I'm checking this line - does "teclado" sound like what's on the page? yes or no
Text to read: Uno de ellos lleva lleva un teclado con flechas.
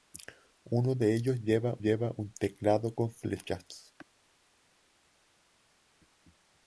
yes